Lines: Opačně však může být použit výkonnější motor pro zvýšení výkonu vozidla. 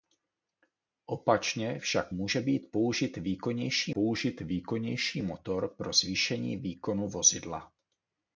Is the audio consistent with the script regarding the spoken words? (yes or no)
no